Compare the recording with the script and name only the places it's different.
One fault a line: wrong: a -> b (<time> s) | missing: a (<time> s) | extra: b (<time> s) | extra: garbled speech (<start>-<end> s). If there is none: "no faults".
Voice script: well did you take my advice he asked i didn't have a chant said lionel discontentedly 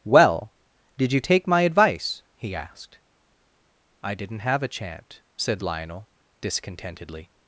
no faults